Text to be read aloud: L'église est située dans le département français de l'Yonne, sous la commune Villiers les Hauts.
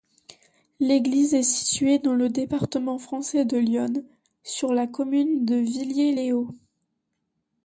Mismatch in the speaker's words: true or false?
true